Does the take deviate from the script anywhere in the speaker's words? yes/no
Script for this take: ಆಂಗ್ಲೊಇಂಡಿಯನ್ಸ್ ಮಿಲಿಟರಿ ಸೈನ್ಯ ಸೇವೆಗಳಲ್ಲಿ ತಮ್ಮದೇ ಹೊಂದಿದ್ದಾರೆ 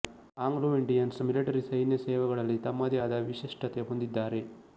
yes